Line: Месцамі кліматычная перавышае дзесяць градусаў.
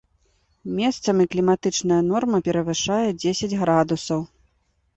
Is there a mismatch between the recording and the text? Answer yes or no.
yes